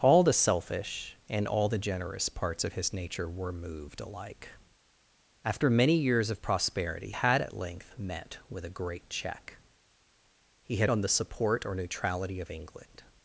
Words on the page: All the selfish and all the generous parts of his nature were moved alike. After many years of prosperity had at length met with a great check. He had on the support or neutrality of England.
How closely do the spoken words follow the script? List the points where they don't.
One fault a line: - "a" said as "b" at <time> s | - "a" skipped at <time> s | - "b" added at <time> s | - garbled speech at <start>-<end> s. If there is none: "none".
none